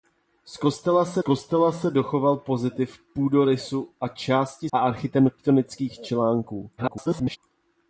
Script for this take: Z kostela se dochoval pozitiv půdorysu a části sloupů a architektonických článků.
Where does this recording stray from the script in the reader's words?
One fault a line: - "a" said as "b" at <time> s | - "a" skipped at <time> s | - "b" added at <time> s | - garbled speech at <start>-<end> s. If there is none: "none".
- "kostela se" added at 1.2 s
- "sloupů" skipped at 4.7 s
- garbled speech at 6.8-7.4 s